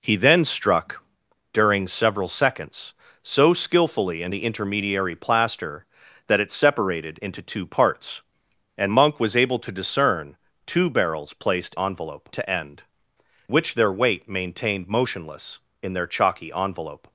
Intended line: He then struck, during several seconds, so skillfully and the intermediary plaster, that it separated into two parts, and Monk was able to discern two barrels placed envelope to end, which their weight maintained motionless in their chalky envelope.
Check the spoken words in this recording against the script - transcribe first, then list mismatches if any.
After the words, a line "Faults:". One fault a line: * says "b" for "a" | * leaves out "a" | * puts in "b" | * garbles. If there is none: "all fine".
He then struck, during several seconds, so skillfully and the intermediary plaster, that it separated into two parts, and Monk was able to discern two barrels placed envelope to end, which their weight maintained motionless in their chalky envelope.
Faults:
all fine